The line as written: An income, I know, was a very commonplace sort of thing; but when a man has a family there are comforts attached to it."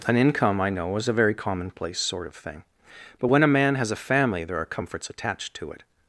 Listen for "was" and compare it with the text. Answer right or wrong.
wrong